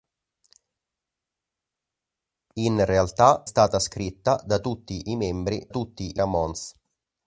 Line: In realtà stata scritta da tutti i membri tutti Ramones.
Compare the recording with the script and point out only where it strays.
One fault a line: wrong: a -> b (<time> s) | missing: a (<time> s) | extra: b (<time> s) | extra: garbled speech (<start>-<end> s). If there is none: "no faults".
no faults